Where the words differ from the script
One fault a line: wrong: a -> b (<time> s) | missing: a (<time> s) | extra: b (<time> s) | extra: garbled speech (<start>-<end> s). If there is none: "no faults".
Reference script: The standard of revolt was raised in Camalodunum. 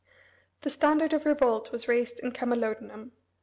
no faults